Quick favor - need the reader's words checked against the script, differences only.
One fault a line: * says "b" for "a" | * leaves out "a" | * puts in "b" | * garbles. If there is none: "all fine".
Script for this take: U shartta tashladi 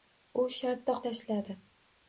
all fine